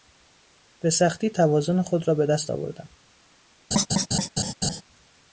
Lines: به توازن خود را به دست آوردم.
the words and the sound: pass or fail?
fail